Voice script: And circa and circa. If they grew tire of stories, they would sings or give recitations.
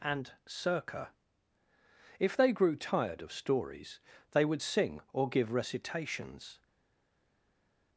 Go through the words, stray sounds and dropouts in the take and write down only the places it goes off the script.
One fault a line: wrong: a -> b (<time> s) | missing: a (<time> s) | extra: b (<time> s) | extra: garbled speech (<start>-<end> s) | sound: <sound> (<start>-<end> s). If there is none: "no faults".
missing: and circa (1.1 s)
wrong: tire -> tired (2.8 s)
wrong: sings -> sing (4.6 s)